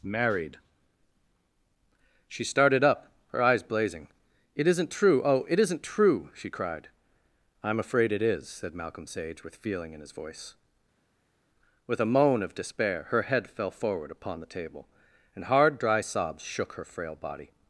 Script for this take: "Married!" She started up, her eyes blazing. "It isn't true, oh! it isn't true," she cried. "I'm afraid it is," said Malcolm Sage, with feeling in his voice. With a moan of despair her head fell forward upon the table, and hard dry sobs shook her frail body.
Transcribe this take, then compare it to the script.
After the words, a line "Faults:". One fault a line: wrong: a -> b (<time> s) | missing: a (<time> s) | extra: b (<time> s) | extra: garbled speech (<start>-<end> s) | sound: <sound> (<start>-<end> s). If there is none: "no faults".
"Married!" She started up, her eyes blazing. "It isn't true, oh! it isn't true," she cried. "I'm afraid it is," said Malcolm Sage, with feeling in his voice. With a moan of despair her head fell forward upon the table, and hard dry sobs shook her frail body.
Faults:
no faults